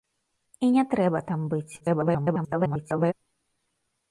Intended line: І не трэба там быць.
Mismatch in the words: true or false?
true